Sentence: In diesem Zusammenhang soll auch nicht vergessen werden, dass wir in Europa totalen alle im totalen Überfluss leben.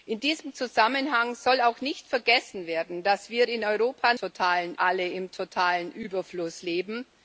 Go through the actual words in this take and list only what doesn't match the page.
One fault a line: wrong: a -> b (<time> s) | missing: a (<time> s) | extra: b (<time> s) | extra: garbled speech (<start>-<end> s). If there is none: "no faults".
no faults